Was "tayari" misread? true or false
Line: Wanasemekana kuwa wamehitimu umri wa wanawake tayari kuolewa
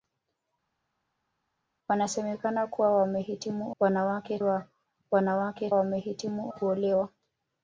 true